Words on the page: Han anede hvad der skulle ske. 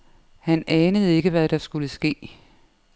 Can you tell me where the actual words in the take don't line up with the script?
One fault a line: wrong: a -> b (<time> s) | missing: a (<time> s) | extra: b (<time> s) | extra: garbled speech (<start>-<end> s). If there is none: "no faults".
extra: ikke (1.2 s)